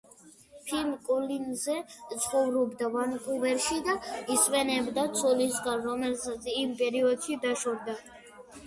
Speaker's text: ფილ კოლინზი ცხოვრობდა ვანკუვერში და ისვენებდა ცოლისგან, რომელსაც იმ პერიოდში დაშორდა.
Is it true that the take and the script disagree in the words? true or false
false